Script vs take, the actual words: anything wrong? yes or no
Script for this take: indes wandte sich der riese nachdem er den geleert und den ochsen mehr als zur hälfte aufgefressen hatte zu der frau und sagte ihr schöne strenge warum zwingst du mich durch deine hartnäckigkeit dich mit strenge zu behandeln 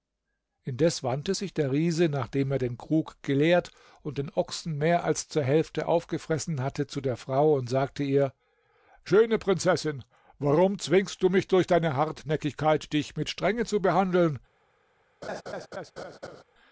yes